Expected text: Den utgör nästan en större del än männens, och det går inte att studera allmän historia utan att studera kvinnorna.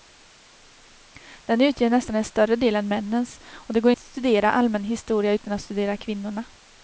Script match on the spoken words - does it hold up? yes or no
no